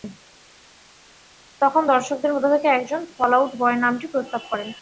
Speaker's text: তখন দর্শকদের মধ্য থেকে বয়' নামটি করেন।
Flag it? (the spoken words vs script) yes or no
yes